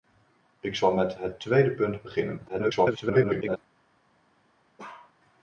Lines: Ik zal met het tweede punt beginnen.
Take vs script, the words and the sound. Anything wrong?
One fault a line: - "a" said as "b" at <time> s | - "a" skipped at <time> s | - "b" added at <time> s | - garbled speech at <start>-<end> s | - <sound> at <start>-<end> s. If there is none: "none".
- garbled speech at 2.5-3.6 s
- bark at 4.8-5.1 s